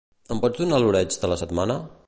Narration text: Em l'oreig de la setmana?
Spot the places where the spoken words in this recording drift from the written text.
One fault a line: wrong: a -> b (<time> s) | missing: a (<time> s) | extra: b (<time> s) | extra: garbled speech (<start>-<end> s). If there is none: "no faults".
extra: pots donar (0.4 s)